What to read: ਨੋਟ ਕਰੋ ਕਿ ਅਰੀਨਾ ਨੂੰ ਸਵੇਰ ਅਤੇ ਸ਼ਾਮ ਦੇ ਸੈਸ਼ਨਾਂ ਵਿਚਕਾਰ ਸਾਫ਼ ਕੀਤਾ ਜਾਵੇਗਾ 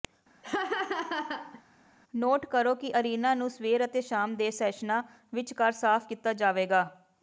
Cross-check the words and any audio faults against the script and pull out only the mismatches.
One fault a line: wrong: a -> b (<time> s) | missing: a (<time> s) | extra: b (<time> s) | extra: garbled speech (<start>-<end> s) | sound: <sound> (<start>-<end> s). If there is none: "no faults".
sound: laugh (0.4-1.6 s)